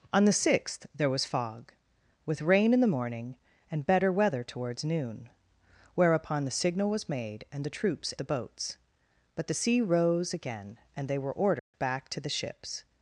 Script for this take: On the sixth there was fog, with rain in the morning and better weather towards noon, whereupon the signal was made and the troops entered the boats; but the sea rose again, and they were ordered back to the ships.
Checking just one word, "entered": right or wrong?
wrong